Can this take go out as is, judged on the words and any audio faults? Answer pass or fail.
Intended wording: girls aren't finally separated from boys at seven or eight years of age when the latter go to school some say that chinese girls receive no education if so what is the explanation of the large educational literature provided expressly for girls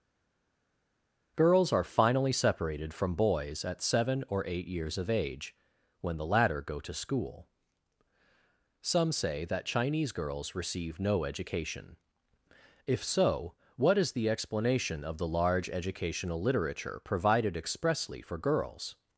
fail